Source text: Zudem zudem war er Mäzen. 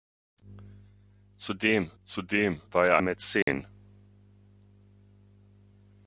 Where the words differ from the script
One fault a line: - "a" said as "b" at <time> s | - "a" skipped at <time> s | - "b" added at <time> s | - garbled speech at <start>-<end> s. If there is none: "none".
none